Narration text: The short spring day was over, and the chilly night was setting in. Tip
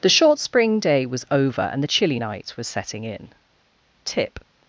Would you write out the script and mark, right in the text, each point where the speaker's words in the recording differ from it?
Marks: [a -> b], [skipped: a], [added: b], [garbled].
The short spring day was over, and the chilly night was setting in. Tip